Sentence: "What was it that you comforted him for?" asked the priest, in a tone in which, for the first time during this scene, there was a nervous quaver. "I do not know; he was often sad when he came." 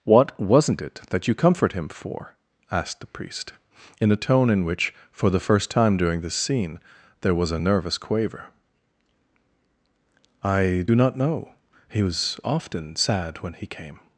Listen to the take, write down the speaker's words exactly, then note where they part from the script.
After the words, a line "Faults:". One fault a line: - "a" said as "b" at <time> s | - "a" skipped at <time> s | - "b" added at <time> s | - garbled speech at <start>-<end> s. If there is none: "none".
"What wasn't it that you comfort him for?" asked the priest, in a tone in which, for the first time during this scene, there was a nervous quaver. "I do not know; he was often sad when he came."
Faults:
- "was" said as "wasn't" at 0.4 s
- "comforted" said as "comfort" at 1.4 s